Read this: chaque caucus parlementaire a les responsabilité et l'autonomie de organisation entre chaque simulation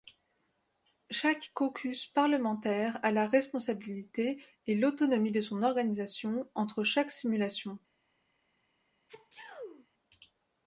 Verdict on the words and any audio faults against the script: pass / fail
fail